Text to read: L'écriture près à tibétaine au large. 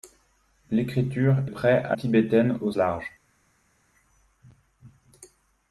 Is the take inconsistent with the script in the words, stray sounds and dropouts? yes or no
no